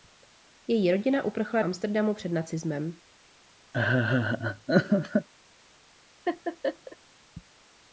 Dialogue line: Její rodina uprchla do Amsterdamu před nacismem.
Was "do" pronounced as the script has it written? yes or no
no